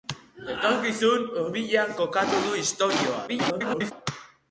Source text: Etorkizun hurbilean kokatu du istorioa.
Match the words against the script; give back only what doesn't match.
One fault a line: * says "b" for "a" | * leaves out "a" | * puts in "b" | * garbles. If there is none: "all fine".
* garbles